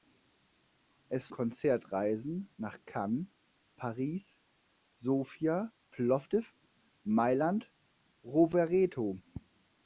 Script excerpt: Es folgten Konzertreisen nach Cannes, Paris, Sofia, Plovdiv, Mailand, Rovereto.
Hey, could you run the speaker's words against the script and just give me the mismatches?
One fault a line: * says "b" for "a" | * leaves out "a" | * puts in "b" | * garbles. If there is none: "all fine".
* leaves out "folgten"